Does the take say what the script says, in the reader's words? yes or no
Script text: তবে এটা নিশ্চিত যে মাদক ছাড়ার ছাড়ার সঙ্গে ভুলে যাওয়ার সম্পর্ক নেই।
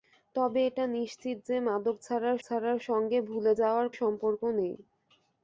yes